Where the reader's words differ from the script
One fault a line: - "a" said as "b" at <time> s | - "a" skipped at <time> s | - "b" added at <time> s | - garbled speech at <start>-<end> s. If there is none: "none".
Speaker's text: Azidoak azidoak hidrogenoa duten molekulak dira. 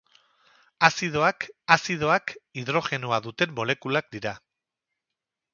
none